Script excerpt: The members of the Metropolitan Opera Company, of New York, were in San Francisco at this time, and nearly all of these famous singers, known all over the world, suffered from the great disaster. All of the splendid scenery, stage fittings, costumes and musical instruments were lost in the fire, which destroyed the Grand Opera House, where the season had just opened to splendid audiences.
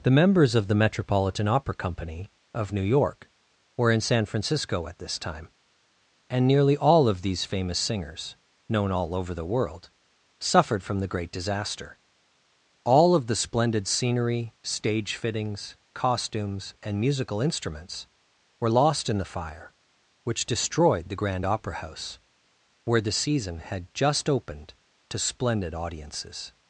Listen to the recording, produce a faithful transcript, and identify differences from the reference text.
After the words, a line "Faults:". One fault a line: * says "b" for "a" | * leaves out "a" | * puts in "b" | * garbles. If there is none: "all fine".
The members of the Metropolitan Opera Company, of New York, were in San Francisco at this time, and nearly all of these famous singers, known all over the world, suffered from the great disaster. All of the splendid scenery, stage fittings, costumes and musical instruments were lost in the fire, which destroyed the Grand Opera House, where the season had just opened to splendid audiences.
Faults:
all fine